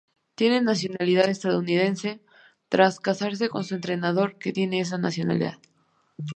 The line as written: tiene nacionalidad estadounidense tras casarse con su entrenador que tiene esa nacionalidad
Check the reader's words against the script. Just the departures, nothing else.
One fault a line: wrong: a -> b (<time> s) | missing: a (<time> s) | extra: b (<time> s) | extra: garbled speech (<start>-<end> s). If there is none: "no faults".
no faults